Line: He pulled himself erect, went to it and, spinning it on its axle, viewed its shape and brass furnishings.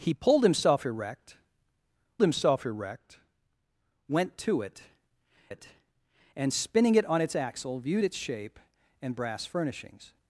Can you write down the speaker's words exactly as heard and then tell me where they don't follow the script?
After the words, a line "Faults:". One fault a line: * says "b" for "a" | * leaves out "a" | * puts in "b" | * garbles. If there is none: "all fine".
He pulled himself erect himself erect, went to it it and, spinning it on its axle, viewed its shape and brass furnishings.
Faults:
* puts in "himself erect"
* puts in "it"